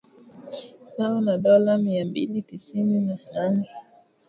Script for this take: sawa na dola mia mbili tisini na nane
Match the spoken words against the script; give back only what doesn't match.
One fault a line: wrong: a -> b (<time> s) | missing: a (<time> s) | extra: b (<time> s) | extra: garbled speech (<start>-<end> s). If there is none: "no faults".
no faults